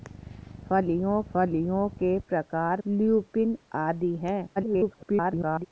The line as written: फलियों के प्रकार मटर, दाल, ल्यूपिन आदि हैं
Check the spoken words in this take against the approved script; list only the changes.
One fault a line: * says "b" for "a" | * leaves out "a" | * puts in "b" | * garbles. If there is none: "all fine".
* puts in "फलियों"
* leaves out "मटर दाल"
* garbles